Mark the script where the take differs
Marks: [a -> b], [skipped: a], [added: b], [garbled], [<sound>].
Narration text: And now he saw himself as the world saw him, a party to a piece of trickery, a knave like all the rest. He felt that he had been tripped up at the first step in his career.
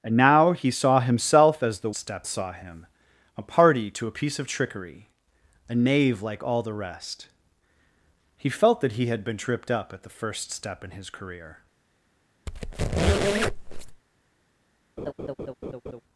And now he saw himself as the [world -> step] saw him, a party to a piece of trickery, a knave like all the rest. He felt that he had been tripped up at the first step in his career. [squeak] [laugh]